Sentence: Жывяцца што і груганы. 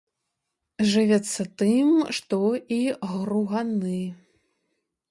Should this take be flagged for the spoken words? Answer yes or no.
yes